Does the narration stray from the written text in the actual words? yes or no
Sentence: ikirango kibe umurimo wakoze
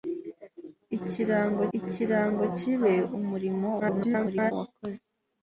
yes